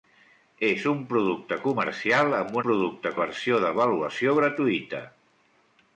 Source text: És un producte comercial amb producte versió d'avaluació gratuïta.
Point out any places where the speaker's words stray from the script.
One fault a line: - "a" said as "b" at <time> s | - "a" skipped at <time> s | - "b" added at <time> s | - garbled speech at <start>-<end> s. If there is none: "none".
none